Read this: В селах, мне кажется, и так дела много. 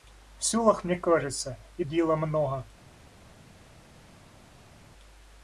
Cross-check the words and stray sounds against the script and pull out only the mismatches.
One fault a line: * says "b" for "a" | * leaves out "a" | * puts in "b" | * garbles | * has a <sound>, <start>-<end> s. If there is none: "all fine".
* leaves out "так"